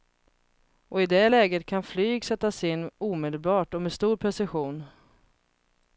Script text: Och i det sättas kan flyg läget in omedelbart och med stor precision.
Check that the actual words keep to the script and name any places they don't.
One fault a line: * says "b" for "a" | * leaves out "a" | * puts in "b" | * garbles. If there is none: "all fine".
* says "läget" for "sättas"
* says "sättas" for "läget"